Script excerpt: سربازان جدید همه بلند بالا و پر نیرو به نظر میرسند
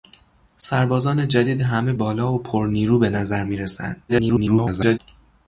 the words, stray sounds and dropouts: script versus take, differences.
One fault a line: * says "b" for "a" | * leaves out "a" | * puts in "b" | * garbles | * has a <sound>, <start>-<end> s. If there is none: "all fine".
* leaves out "بلند"
* garbles